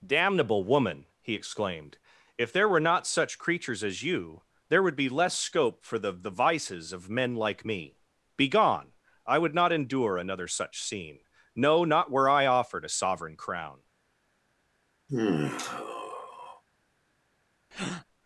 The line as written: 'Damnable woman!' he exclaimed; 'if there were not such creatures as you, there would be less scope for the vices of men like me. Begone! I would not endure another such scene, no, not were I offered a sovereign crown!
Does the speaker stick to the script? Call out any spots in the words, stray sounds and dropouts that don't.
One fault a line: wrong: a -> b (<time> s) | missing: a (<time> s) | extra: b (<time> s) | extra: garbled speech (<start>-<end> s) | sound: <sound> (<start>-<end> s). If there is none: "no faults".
extra: the (6.1 s)
sound: sigh (15.1-16.6 s)
sound: breath (17.7-18.0 s)